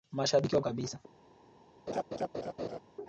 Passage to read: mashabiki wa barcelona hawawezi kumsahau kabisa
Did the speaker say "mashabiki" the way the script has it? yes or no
yes